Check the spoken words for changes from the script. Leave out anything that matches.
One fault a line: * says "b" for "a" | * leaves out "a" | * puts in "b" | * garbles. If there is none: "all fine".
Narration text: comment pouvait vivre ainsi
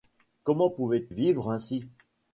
all fine